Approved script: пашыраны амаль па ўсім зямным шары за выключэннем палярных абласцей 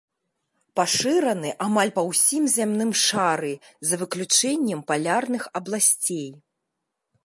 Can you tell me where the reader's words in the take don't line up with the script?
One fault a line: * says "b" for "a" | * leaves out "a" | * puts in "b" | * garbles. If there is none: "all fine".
all fine